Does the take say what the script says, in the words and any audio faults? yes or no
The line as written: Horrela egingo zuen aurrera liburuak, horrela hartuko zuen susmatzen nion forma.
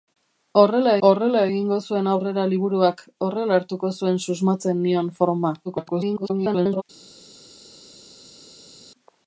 no